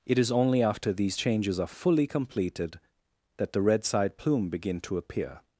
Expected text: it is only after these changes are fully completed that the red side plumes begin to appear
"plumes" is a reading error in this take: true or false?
true